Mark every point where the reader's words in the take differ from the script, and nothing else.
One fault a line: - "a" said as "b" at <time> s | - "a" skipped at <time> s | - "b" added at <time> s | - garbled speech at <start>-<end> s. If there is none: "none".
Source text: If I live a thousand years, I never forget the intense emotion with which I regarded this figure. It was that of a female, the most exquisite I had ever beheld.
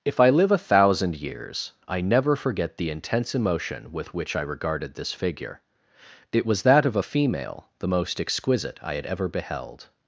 none